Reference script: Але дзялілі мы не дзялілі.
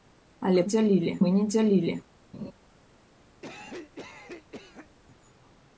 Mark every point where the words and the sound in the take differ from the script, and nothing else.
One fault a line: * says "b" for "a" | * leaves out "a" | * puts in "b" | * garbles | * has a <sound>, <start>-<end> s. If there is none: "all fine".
* has a laugh, 2.3-2.5 s
* has a cough, 3.4-4.9 s